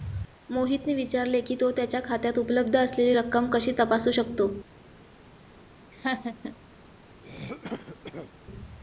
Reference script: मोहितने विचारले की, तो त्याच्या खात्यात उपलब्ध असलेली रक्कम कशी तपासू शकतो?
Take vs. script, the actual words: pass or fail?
pass